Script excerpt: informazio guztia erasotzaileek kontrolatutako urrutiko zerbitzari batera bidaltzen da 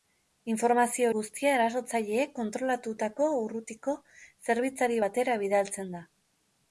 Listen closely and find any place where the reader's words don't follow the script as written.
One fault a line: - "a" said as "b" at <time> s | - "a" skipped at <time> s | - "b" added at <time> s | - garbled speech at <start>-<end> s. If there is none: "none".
none